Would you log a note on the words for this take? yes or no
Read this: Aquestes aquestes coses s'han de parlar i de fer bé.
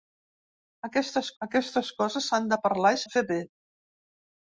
no